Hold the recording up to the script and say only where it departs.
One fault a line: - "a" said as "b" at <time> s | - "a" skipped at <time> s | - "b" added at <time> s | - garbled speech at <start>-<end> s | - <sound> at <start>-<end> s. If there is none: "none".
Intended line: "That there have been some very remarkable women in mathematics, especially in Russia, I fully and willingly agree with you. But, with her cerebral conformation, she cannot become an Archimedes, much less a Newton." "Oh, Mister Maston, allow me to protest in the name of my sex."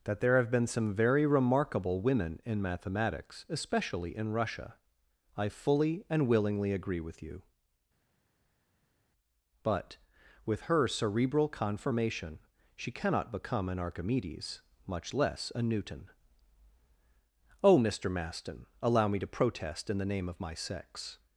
none